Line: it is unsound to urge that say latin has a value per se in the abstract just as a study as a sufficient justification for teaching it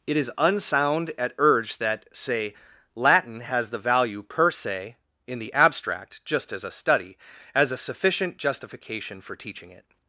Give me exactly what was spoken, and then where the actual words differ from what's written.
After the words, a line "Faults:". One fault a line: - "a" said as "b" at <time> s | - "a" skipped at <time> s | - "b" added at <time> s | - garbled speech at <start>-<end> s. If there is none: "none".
it is unsound at urge that say latin has the value per se in the abstract just as a study as a sufficient justification for teaching it
Faults:
- "to" said as "at" at 1.2 s
- "a" said as "the" at 3.7 s